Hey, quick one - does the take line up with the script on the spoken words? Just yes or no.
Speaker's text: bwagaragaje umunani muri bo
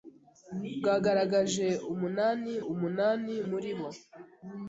no